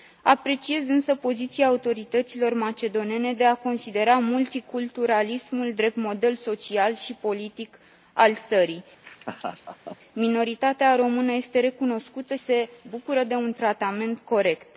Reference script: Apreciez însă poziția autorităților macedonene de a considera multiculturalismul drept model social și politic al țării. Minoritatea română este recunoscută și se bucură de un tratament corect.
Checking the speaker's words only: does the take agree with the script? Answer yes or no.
no